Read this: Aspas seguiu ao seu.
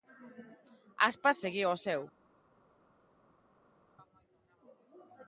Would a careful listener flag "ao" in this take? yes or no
no